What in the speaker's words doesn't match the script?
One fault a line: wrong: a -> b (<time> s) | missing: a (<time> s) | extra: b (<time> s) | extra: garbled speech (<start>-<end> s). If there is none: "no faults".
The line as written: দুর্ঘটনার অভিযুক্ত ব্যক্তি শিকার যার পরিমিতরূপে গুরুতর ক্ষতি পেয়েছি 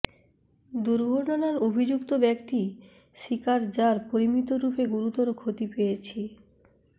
no faults